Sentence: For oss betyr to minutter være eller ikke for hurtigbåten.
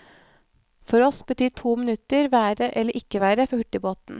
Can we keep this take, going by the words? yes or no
no